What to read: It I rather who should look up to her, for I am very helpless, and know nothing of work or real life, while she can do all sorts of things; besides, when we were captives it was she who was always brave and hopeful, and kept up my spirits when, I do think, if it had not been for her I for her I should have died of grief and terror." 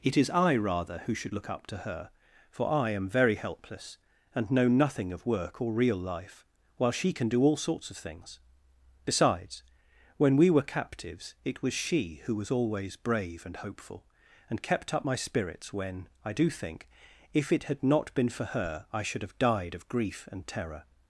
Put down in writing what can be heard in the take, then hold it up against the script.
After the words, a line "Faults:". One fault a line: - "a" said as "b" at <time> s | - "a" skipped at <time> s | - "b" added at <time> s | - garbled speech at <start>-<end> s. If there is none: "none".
It is I rather who should look up to her, for I am very helpless, and know nothing of work or real life, while she can do all sorts of things; besides, when we were captives it was she who was always brave and hopeful, and kept up my spirits when, I do think, if it had not been for her I should have died of grief and terror."
Faults:
- "is" added at 0.2 s
- "for her I" skipped at 19.0 s